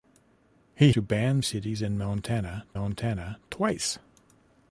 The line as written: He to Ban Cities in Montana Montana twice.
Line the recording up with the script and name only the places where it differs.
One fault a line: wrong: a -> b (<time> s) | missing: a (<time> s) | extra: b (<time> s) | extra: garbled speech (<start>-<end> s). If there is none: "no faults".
no faults